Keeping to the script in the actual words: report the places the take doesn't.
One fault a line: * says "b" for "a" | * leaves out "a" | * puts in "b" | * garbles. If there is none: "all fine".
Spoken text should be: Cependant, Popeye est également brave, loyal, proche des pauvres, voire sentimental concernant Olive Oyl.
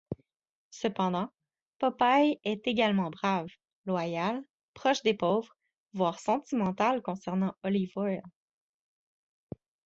all fine